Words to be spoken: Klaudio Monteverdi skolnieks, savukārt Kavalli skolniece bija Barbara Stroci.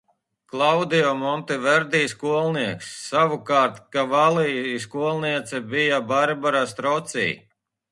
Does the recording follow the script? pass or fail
pass